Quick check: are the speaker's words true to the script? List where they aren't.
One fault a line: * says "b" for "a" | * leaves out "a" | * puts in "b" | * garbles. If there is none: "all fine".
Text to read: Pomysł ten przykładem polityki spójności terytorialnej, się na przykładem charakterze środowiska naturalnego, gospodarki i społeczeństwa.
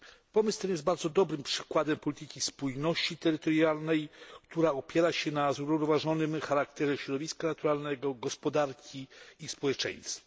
* puts in "jest bardzo dobrym"
* puts in "która opiera"
* says "zrównoważonym" for "przykładem"